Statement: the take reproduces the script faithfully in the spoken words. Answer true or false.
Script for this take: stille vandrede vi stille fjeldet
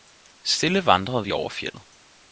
false